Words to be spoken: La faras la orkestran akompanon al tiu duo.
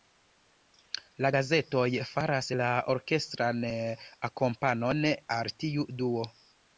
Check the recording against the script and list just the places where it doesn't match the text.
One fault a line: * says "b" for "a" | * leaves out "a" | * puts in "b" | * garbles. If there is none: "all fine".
* puts in "gazetoj"